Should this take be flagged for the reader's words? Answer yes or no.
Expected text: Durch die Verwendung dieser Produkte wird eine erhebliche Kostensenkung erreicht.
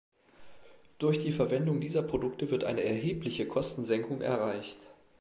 no